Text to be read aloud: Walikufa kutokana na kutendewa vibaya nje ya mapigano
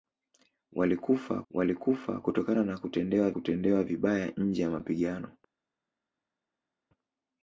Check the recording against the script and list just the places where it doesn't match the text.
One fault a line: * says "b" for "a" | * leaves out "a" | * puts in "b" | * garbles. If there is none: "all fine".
* puts in "walikufa"
* puts in "kutendewa"